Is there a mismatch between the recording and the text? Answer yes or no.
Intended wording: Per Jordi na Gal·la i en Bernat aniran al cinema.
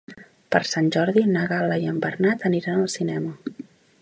yes